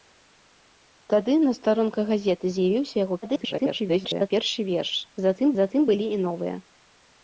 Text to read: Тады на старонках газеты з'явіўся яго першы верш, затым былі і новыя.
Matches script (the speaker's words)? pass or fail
fail